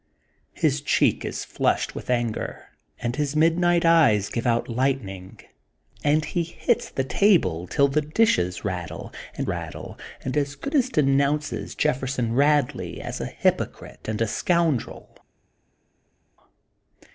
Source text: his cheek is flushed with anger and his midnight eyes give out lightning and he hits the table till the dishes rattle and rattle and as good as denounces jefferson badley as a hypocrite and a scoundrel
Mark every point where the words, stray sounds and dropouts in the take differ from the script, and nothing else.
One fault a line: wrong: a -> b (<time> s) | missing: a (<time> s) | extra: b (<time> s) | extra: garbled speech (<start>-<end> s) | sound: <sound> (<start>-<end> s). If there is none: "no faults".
no faults